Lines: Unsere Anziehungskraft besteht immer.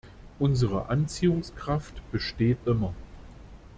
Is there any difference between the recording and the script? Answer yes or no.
no